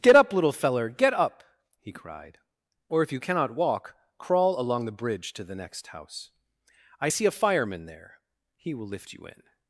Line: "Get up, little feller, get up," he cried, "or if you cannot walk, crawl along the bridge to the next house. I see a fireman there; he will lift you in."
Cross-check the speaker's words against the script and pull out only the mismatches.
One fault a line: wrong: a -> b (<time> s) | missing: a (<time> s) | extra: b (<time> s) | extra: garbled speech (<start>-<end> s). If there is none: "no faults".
no faults